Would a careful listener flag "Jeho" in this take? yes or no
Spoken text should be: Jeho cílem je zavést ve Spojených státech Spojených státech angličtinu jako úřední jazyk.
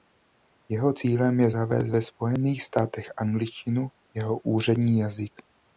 no